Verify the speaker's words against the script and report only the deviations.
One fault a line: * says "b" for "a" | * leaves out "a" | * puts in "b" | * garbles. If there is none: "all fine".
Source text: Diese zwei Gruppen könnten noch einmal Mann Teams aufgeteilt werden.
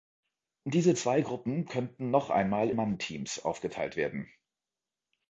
all fine